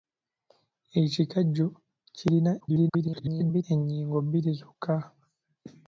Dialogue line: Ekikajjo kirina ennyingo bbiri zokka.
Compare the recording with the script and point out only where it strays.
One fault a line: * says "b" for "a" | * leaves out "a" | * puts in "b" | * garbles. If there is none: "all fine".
* garbles